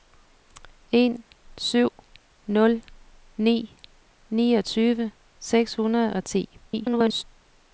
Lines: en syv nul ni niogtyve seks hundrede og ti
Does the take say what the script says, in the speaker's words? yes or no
no